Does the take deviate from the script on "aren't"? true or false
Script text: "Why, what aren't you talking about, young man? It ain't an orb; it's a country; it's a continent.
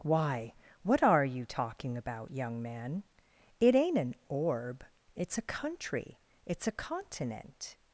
true